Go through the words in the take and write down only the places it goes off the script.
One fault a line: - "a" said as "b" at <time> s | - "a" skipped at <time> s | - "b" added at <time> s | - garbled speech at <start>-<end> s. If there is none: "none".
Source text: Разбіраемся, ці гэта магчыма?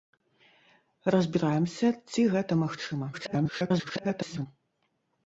- garbled speech at 3.1-4.5 s